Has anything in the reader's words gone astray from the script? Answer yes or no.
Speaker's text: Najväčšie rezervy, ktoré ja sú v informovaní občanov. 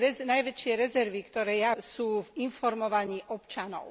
no